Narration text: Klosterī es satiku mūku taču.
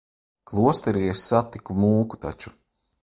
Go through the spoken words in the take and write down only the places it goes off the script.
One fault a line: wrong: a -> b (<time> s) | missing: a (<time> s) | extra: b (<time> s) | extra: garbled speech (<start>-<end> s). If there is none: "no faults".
no faults